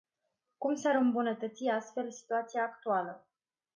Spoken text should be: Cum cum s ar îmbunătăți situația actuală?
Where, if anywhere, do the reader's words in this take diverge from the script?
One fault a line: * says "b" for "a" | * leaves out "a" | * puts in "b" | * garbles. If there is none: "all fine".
* leaves out "cum"
* puts in "astfel"